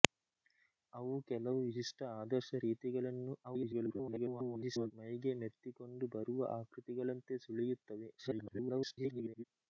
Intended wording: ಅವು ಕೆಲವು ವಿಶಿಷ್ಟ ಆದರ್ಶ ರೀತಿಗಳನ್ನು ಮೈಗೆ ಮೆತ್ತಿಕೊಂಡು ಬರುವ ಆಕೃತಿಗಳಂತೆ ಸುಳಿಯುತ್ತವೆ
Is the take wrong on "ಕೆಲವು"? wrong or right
right